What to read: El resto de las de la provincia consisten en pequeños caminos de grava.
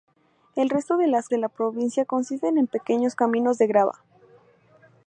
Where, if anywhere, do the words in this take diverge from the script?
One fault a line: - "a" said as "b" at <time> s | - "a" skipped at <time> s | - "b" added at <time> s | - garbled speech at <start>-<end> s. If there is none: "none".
none